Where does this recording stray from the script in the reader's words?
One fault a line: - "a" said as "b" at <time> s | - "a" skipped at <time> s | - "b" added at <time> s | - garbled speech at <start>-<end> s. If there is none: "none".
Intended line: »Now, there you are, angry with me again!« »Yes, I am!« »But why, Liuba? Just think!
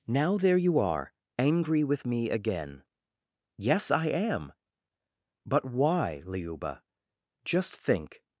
none